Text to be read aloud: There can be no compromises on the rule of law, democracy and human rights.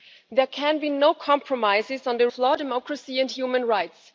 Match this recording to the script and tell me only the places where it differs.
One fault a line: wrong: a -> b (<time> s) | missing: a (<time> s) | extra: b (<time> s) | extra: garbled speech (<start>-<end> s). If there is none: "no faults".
missing: rule (2.3 s)